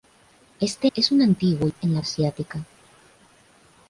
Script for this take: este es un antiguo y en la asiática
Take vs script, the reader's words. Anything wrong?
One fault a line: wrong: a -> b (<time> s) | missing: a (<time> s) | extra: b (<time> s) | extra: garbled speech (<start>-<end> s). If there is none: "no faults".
no faults